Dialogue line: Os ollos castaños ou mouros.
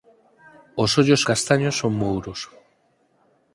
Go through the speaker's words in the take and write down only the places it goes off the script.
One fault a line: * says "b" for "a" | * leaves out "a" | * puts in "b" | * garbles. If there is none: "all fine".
all fine